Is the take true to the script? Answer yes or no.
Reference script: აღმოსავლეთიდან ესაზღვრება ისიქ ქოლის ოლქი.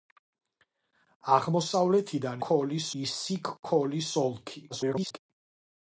no